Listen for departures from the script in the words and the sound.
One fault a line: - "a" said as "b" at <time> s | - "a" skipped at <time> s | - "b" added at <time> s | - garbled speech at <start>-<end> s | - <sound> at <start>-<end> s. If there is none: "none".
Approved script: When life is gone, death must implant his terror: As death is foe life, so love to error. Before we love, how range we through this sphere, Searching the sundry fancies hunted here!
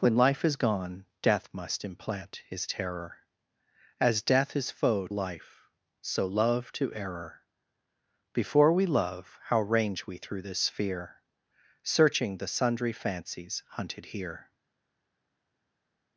none